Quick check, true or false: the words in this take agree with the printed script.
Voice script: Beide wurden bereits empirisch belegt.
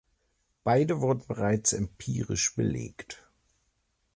true